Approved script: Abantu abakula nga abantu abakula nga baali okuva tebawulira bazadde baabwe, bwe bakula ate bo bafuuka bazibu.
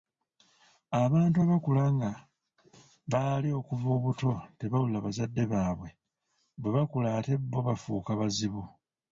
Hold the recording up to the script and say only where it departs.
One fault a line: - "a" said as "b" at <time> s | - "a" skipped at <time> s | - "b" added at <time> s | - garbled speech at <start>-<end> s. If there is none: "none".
- "abantu abakula nga" skipped at 2.1 s
- "obuto" added at 4.0 s